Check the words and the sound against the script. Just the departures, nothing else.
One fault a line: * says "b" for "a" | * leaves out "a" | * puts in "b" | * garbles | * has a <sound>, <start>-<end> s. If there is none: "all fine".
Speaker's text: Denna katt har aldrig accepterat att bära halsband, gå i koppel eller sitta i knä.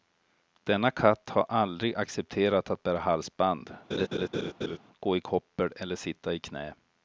* has a laugh, 3.9-4.8 s